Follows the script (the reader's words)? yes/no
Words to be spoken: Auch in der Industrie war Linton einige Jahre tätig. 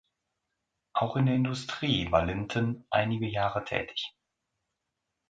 yes